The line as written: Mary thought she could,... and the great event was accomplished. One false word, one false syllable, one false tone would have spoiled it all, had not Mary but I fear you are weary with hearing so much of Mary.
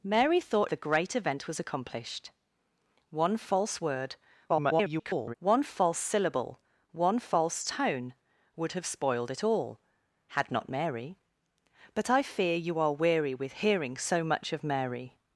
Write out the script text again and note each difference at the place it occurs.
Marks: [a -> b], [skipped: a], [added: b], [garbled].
Mary thought [skipped: she could,... and] the great event was accomplished. One false word, [garbled] one false syllable, one false tone would have spoiled it all, had not Mary but I fear you are weary with hearing so much of Mary.